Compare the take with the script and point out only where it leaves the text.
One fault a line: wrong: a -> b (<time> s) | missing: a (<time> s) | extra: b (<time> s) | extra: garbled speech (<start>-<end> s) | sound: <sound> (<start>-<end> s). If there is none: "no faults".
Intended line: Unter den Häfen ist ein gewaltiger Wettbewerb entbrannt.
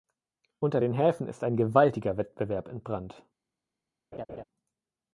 sound: laugh (4.1-4.4 s)